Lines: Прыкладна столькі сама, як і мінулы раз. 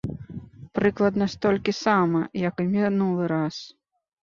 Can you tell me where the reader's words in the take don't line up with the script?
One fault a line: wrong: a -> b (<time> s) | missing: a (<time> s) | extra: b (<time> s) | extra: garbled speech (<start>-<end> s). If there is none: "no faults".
no faults